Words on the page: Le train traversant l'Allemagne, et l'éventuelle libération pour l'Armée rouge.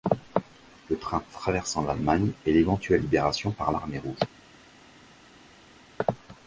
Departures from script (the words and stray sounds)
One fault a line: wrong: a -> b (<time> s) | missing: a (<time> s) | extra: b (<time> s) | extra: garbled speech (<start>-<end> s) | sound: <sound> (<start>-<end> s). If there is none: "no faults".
wrong: pour -> par (3.5 s)